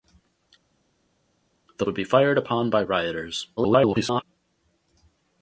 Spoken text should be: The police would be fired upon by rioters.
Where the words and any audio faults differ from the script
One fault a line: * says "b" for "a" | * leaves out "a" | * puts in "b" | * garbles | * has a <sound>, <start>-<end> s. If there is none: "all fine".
* leaves out "police"
* garbles